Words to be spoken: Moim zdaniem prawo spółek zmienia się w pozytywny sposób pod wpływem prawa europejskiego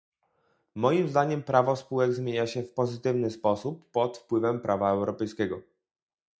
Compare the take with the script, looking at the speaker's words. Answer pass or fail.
pass